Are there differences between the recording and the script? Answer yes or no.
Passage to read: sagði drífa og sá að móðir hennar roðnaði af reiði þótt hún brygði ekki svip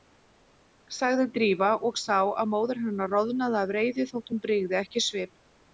no